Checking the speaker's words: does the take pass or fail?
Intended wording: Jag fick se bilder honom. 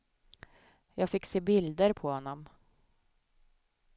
fail